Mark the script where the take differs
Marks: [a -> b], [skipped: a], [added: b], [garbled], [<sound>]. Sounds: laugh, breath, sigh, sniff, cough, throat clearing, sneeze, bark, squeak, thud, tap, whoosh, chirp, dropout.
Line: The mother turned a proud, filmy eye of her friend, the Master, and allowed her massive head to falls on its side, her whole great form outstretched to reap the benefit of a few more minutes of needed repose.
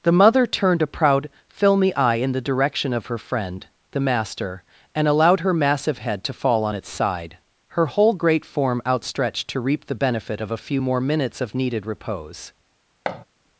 The mother turned a proud, filmy eye [added: in the direction] of her friend, the Master, and allowed her massive head to [falls -> fall] on its side, her whole great form outstretched to reap the benefit of a few more minutes of needed repose. [thud]